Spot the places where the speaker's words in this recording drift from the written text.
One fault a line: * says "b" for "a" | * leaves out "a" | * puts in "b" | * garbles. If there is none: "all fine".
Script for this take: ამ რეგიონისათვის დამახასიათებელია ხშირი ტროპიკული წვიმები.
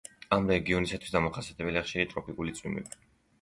all fine